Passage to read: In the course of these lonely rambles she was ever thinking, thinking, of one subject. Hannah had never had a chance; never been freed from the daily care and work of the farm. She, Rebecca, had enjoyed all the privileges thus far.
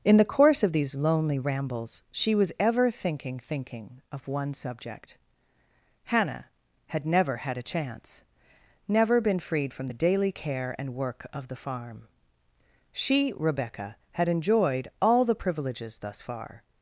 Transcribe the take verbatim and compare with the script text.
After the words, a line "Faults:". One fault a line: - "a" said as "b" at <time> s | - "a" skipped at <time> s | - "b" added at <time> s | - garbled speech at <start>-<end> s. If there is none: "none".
In the course of these lonely rambles she was ever thinking, thinking, of one subject. Hannah had never had a chance; never been freed from the daily care and work of the farm. She, Rebecca, had enjoyed all the privileges thus far.
Faults:
none